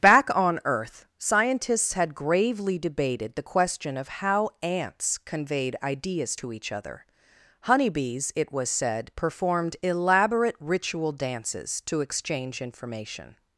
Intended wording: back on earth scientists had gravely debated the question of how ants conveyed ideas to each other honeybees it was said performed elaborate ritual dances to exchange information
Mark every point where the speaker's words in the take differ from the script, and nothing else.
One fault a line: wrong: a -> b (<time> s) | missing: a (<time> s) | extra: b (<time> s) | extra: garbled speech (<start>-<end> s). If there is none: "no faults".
no faults